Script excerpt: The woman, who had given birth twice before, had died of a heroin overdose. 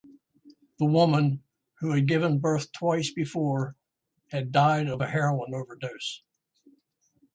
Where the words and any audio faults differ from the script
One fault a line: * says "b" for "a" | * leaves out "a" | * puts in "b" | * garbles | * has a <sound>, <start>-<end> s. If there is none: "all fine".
all fine